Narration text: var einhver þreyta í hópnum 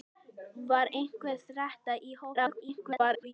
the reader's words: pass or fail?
fail